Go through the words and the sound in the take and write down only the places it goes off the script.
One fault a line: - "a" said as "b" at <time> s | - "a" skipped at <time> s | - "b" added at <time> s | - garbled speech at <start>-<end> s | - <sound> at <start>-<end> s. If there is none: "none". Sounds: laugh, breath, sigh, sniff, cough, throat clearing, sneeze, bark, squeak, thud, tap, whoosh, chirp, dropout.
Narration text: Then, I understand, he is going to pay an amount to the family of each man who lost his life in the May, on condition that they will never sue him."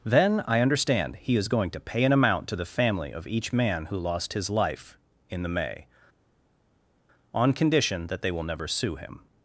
none